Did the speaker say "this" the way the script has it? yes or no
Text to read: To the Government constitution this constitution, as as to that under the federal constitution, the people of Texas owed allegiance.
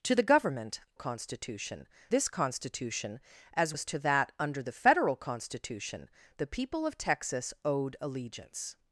yes